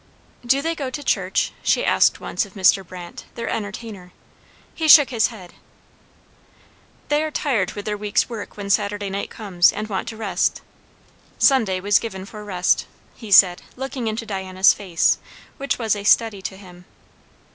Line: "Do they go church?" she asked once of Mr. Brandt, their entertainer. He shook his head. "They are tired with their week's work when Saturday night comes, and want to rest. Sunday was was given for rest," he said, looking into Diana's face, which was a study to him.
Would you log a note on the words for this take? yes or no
yes